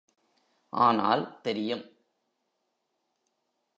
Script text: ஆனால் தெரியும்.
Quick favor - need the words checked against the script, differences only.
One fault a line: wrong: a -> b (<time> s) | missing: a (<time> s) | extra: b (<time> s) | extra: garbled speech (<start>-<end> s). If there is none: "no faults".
no faults